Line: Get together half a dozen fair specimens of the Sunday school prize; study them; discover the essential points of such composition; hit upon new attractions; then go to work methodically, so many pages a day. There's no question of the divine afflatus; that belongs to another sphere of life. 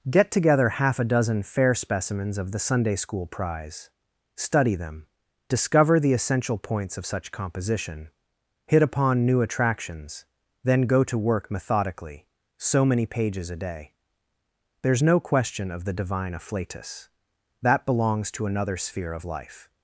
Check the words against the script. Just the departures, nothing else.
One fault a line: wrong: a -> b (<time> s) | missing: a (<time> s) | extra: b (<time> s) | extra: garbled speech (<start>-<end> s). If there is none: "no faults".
no faults